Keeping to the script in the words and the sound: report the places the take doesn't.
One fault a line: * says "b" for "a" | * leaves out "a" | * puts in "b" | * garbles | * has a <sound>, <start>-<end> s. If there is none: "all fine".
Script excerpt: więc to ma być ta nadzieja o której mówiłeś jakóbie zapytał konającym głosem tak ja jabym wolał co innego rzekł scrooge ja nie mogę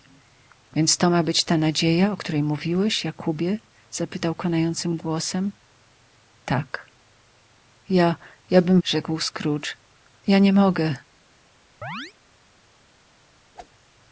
* leaves out "wolał co innego"
* has a chirp, 11.8-12.1 s
* has a whoosh, 13.5-13.7 s